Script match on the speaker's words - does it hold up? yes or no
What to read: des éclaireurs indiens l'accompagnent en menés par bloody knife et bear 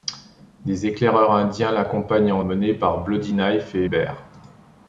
yes